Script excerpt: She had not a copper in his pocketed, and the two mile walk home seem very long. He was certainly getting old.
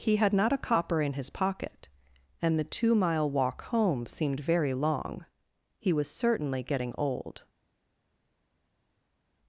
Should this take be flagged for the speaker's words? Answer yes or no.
yes